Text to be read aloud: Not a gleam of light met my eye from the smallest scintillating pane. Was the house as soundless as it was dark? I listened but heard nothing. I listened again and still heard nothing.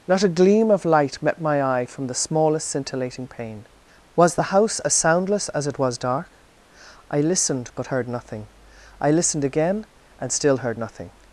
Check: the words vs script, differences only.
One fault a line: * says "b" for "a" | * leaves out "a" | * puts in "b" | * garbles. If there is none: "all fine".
all fine